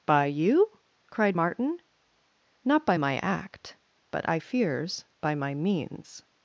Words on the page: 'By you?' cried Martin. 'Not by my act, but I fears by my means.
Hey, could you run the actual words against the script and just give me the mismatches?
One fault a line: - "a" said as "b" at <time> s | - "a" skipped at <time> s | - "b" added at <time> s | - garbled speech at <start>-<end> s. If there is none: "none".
none